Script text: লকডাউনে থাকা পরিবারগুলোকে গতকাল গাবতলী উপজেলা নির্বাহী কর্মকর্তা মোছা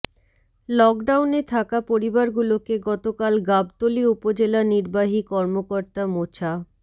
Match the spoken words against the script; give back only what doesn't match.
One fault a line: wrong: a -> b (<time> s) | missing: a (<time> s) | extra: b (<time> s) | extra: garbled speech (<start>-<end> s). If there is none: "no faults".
no faults